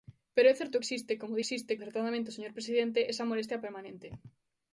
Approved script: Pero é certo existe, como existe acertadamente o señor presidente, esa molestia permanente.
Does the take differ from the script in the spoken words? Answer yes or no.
no